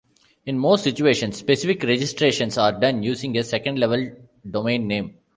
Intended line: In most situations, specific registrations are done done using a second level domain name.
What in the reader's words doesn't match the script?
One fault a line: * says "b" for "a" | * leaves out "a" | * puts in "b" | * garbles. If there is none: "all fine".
* leaves out "done"